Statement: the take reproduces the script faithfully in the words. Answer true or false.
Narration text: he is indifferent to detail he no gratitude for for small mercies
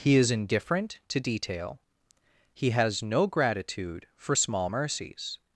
false